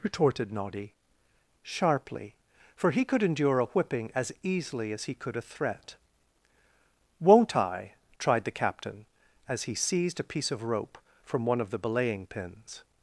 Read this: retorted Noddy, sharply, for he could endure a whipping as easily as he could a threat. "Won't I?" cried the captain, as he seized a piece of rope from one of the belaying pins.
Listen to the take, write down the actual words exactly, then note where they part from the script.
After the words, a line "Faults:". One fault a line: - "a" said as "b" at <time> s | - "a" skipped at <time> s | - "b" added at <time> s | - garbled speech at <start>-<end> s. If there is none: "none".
retorted Noddy, sharply, for he could endure a whipping as easily as he could a threat. "Won't I?" tried the captain, as he seized a piece of rope from one of the belaying pins.
Faults:
- "cried" said as "tried" at 8.2 s